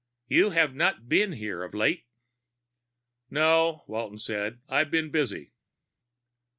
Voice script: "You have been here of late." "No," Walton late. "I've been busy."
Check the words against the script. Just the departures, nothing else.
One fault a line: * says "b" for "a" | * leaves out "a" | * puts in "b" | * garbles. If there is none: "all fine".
* puts in "not"
* says "said" for "late"